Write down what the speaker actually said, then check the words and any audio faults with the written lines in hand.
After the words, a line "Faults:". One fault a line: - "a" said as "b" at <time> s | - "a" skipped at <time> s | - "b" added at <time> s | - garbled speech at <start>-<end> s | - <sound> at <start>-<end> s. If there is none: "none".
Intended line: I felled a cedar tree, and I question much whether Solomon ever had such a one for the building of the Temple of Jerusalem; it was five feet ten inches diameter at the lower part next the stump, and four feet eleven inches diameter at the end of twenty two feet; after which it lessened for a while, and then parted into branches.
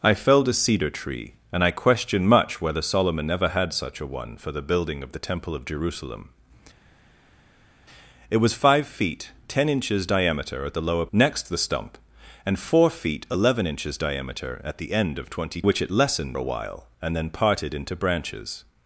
I felled a cedar tree, and I question much whether Solomon ever had such a one for the building of the Temple of Jerusalem; it was five feet ten inches diameter at the lower next the stump, and four feet eleven inches diameter at the end of twenty which it lessened a while, and then parted into branches.
Faults:
- "part" skipped at 11.1 s
- "two feet after" skipped at 15.6 s
- "for" skipped at 16.4 s